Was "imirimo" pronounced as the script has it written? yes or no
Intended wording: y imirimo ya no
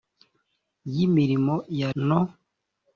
yes